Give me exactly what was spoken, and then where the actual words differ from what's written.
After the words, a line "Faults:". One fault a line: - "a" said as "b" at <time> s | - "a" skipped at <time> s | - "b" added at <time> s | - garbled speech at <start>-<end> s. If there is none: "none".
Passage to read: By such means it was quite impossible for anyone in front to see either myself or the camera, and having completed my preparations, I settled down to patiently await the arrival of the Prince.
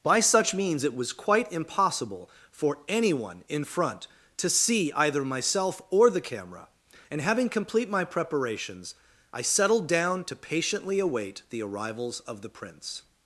By such means it was quite impossible for anyone in front to see either myself or the camera, and having complete my preparations, I settled down to patiently await the arrivals of the Prince.
Faults:
- "completed" said as "complete" at 7.5 s
- "arrival" said as "arrivals" at 11.6 s